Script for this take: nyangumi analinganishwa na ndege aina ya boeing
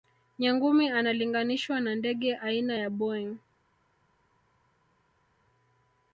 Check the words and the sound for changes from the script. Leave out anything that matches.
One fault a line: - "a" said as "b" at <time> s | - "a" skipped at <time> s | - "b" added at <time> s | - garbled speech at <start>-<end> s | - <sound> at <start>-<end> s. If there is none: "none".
none